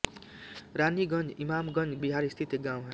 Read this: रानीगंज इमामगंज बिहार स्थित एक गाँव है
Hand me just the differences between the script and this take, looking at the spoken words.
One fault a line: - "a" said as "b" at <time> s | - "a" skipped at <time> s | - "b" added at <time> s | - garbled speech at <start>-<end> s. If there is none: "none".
none